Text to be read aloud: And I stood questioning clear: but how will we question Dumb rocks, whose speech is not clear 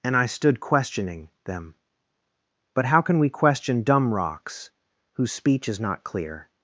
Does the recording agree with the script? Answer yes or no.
no